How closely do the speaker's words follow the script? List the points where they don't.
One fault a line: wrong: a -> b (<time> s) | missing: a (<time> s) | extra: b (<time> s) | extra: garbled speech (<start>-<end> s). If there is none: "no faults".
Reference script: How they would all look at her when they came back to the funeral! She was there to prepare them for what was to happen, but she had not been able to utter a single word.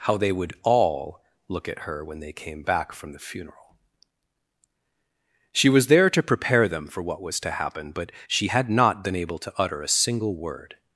wrong: to -> from (2.9 s)